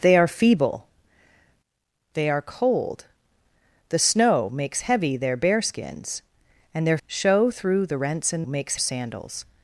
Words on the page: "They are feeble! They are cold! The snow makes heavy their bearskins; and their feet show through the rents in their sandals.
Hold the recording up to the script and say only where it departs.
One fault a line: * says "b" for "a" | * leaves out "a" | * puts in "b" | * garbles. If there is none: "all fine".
* leaves out "feet"
* says "makes" for "their"